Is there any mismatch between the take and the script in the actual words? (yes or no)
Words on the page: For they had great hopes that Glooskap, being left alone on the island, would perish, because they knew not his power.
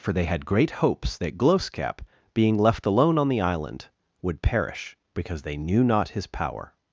no